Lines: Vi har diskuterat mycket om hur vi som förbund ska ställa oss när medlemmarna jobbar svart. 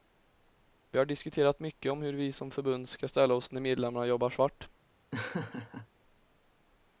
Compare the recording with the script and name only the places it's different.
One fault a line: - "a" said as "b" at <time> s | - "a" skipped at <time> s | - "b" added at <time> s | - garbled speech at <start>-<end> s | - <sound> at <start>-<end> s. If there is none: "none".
- laugh at 5.1-5.9 s